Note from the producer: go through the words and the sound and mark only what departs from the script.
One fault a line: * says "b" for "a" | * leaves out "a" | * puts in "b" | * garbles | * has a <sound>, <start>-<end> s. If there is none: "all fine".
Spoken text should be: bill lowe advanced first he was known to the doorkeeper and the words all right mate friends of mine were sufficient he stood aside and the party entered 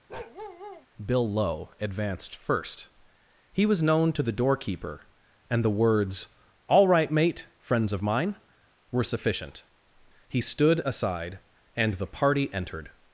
* has a bark, 0.1-0.9 s